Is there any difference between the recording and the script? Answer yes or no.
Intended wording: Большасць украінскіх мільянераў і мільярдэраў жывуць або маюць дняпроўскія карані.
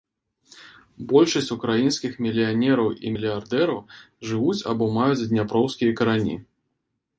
no